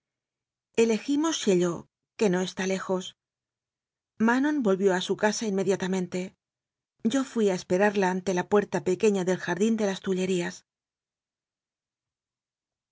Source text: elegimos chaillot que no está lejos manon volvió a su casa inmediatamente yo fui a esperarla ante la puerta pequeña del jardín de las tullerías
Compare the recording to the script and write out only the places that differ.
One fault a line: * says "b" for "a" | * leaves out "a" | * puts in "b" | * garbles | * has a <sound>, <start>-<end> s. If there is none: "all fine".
all fine